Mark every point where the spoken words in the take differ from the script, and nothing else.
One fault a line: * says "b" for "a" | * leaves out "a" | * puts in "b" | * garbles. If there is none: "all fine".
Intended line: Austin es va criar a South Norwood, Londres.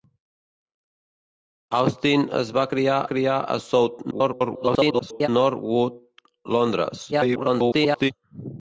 * puts in "criar"
* garbles
* garbles